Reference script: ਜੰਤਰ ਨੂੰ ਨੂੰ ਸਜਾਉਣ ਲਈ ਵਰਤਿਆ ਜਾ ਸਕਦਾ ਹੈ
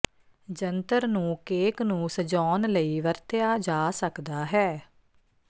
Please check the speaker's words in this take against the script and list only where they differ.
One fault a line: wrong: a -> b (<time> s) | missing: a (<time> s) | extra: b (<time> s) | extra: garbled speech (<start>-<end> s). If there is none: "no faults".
extra: ਕੇਕ (1.4 s)